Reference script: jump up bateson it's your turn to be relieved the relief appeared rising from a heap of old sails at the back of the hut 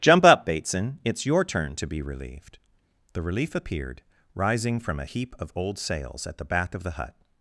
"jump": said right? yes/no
yes